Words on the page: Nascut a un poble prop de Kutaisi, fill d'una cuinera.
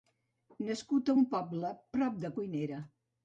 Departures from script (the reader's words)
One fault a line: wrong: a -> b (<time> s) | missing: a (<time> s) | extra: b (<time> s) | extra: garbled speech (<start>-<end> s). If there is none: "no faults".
missing: Kutaisi fill d'una (2.3 s)